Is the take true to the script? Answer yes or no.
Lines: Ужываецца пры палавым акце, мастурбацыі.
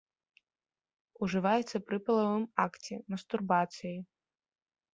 yes